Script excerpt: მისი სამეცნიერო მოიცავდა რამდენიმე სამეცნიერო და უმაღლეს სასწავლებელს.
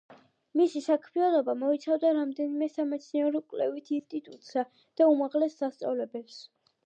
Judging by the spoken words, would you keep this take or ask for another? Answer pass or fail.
fail